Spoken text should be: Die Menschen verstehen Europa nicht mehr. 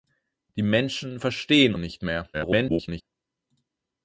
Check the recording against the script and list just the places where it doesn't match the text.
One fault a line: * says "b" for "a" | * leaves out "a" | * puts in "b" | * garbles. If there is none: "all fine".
* leaves out "Europa"
* garbles